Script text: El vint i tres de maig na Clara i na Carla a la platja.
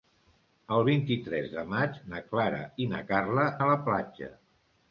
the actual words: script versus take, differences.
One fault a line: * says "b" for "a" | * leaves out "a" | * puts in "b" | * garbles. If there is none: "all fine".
all fine